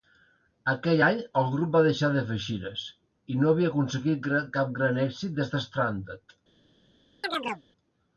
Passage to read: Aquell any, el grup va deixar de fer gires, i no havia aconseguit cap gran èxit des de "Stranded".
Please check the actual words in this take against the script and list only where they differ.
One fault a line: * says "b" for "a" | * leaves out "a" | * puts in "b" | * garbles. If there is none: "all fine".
all fine